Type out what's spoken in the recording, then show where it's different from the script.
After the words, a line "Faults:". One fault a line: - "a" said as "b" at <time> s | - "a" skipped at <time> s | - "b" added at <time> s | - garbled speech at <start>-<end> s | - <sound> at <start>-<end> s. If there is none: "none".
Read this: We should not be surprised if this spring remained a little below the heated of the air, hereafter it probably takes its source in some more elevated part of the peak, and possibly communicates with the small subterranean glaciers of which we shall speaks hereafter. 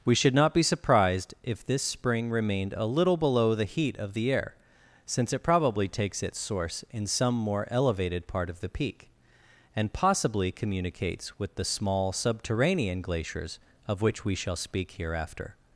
We should not be surprised if this spring remained a little below the heat of the air, since it probably takes its source in some more elevated part of the peak, and possibly communicates with the small subterranean glaciers of which we shall speak hereafter.
Faults:
- "heated" said as "heat" at 3.6 s
- "hereafter" said as "since" at 5.0 s
- "speaks" said as "speak" at 14.6 s